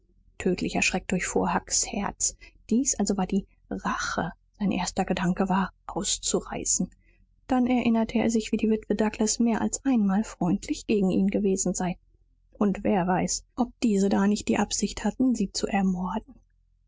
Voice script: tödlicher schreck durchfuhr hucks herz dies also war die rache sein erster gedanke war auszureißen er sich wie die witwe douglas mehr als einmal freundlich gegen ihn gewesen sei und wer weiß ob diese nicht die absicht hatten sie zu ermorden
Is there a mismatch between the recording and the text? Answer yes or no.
yes